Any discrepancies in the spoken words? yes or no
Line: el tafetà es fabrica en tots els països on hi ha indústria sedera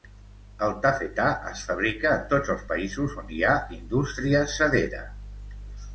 no